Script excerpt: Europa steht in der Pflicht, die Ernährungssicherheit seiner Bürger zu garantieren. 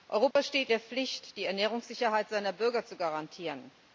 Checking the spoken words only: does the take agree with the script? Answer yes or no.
no